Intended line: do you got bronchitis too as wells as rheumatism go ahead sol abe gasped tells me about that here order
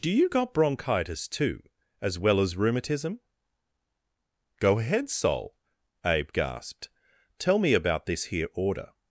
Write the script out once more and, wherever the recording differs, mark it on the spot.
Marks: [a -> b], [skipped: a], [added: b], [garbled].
do you got bronchitis too as [wells -> well] as rheumatism go ahead sol abe gasped [tells -> tell] me about [that -> this] here order